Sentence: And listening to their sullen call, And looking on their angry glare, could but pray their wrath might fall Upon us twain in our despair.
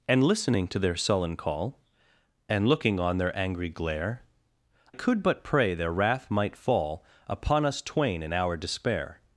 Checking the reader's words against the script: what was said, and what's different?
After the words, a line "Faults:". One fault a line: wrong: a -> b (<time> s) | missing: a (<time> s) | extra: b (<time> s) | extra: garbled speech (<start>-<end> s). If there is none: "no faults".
And listening to their sullen call, And looking on their angry glare, could but pray their wrath might fall Upon us twain in our despair.
Faults:
no faults